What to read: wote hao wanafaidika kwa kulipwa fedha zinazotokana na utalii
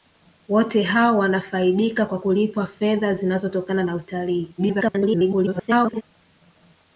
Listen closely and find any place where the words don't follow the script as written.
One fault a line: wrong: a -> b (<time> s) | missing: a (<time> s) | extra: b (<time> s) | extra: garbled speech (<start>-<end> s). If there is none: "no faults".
extra: garbled speech (4.6-6.0 s)